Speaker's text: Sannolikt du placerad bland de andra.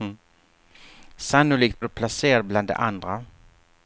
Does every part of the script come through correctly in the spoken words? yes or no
yes